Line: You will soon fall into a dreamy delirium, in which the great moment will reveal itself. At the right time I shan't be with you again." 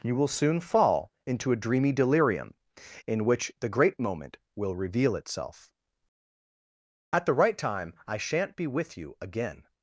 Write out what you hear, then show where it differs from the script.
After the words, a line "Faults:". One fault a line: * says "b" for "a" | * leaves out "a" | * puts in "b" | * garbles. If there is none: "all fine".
You will soon fall into a dreamy delirium, in which the great moment will reveal itself. At the right time I shan't be with you again."
Faults:
all fine